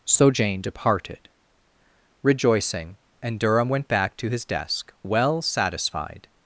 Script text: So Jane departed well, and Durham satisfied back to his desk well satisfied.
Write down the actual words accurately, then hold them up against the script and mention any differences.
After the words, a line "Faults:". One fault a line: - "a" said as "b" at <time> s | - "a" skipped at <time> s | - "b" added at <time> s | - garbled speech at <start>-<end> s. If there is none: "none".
So Jane departed rejoicing, and Durham went back to his desk well satisfied.
Faults:
- "well" said as "rejoicing" at 2.2 s
- "satisfied" said as "went" at 3.7 s